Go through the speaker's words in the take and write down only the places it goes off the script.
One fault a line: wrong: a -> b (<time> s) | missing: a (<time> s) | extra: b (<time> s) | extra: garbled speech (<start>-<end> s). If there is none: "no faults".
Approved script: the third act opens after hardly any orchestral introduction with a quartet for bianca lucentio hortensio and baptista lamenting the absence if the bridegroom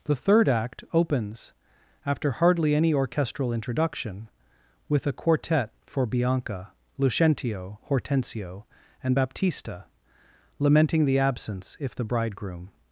no faults